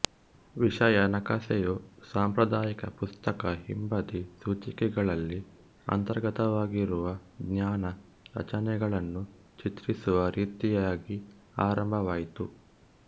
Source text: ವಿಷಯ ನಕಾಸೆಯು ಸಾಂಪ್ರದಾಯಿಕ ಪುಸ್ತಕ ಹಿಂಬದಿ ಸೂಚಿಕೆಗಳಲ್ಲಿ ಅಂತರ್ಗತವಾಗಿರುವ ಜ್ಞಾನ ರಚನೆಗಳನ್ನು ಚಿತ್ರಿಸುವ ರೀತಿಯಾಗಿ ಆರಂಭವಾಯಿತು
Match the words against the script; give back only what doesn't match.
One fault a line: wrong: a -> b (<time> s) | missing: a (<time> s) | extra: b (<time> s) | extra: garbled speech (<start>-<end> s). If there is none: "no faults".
no faults